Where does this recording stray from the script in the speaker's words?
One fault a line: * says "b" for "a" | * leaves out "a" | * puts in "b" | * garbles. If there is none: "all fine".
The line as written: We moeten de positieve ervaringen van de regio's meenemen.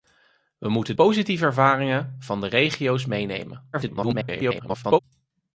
* leaves out "de"
* garbles